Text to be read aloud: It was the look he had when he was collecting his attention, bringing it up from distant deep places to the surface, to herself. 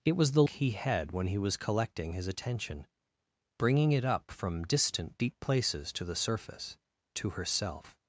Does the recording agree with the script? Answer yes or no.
no